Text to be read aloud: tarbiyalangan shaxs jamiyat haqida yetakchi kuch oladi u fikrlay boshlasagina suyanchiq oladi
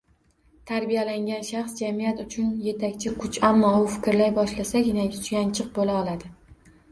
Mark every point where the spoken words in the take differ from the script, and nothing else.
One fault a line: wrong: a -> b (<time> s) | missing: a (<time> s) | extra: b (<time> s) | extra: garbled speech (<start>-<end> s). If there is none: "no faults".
wrong: haqida -> uchun (2.2 s)
wrong: oladi -> ammo (3.5 s)
extra: bo‘la (5.8 s)